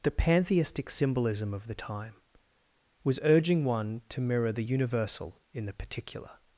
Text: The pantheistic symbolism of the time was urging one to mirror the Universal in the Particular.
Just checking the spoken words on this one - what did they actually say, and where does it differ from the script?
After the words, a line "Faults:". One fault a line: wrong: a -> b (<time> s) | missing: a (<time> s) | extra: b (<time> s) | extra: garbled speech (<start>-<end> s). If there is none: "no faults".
The pantheistic symbolism of the time was urging one to mirror the Universal in the Particular.
Faults:
no faults